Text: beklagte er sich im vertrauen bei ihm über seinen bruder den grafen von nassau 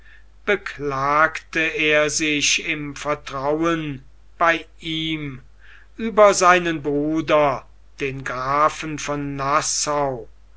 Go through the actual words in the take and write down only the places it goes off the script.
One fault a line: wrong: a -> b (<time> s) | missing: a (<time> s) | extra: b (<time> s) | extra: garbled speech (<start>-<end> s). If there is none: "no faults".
no faults